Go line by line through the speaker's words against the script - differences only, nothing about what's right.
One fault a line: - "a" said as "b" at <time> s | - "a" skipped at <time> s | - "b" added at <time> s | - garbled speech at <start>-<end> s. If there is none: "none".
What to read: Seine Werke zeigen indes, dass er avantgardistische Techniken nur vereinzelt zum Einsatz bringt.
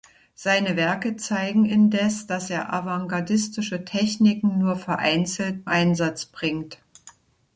- "zum" skipped at 5.6 s